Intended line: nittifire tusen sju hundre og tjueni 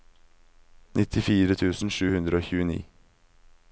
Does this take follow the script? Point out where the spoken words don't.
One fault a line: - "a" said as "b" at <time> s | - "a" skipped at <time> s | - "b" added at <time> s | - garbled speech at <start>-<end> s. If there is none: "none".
none